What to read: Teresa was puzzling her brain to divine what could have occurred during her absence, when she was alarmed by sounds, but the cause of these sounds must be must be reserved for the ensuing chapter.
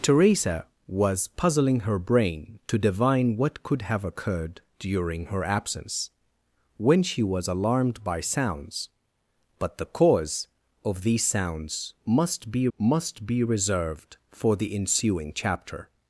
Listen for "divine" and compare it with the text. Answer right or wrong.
right